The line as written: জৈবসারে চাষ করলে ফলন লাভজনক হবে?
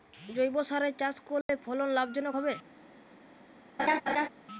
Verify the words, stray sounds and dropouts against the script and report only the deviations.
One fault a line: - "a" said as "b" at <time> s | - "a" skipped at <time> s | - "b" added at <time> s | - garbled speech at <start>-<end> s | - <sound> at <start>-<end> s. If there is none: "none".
- dropout at 1.4-1.5 s
- laugh at 3.8-4.3 s